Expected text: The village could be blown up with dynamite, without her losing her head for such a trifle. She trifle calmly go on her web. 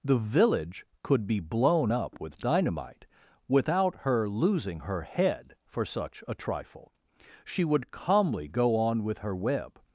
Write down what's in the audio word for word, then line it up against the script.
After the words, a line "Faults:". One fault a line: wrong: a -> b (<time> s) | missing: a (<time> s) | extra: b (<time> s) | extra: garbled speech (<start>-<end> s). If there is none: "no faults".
The village could be blown up with dynamite, without her losing her head for such a trifle. She would calmly go on with her web.
Faults:
wrong: trifle -> would (7.6 s)
extra: with (9.0 s)